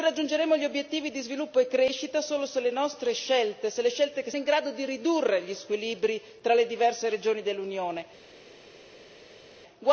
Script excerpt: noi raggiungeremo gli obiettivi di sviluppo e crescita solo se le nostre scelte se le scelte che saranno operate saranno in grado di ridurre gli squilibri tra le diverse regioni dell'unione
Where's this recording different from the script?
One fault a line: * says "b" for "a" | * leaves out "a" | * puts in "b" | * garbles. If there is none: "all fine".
* leaves out "saranno operate saranno"